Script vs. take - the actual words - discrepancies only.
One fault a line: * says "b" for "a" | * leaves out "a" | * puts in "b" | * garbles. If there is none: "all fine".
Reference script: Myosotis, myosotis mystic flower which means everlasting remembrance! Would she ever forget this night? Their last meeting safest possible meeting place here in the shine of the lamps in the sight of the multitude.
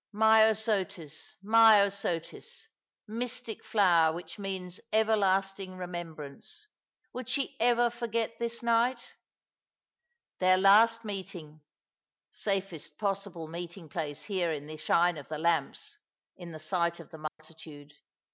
all fine